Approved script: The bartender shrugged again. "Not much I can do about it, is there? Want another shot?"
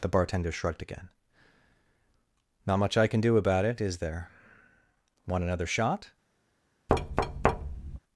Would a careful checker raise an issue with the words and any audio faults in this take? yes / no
yes